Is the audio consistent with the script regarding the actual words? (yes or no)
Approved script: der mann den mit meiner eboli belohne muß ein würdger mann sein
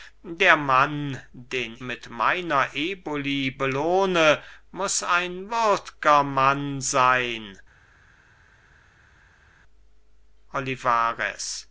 yes